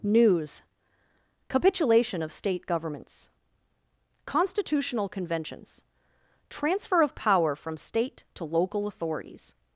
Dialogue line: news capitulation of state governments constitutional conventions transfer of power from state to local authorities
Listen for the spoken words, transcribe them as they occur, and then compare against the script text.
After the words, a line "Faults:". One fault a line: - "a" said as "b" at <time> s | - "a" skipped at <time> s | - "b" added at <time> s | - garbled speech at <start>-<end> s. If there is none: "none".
news capitulation of state governments constitutional conventions transfer of power from state to local authorities
Faults:
none